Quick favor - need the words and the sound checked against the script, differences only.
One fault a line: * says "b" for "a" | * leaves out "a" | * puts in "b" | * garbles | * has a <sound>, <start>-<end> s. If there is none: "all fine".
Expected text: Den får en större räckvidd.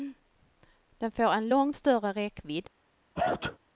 * puts in "långt"
* has a sneeze, 3.2-3.6 s